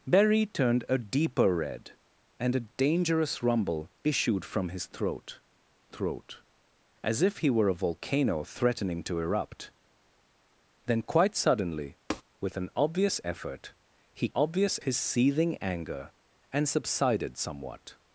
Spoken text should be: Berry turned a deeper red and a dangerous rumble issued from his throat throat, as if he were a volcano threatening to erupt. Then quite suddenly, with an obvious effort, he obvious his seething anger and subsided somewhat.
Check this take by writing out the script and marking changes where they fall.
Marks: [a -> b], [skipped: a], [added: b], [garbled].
Berry turned a deeper red and a dangerous rumble issued from his throat throat, as if he were a volcano threatening to erupt. Then quite suddenly, with an obvious effort, he obvious his seething anger and subsided somewhat.